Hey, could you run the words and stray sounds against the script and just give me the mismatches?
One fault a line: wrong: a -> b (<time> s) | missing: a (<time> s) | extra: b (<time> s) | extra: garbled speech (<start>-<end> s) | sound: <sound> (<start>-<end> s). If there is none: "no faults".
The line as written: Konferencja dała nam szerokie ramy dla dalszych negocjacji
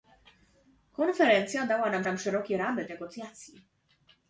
extra: nam (2.0 s)
missing: dla dalszych (2.9 s)